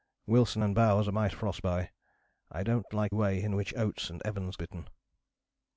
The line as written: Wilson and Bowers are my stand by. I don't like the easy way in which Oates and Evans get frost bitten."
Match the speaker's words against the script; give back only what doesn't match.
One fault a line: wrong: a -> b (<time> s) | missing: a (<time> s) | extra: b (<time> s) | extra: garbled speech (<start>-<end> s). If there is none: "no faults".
wrong: stand -> frost (1.3 s)
missing: the easy (3.2 s)
missing: get frost (4.6 s)